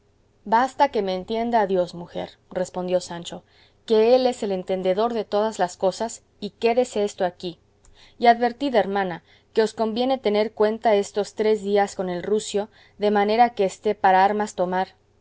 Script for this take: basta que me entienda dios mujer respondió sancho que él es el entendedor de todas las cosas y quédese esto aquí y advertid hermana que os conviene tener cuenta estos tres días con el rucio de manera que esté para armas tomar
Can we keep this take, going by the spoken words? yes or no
yes